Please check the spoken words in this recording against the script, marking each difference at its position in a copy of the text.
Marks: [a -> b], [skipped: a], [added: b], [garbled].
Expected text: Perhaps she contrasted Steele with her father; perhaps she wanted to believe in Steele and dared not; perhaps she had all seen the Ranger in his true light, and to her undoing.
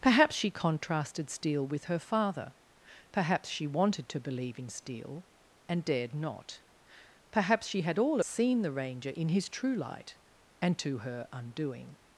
Perhaps she contrasted Steele with her father; perhaps she wanted to believe in Steele and dared not; perhaps she had all seen the Ranger in his true light, and to her undoing.